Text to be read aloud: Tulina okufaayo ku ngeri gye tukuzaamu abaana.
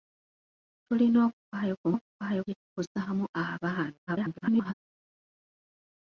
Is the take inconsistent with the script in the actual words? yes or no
yes